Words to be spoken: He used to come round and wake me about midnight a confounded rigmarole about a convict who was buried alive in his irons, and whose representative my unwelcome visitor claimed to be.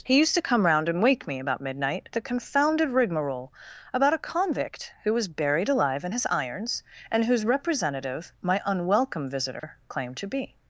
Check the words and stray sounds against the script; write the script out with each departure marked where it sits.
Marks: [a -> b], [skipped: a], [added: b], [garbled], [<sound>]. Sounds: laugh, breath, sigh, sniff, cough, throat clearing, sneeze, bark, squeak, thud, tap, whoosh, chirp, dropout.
He used to come round and wake me about midnight a confounded rigmarole about a convict who was buried alive in his irons, and whose representative my unwelcome visitor [dropout] claimed to be.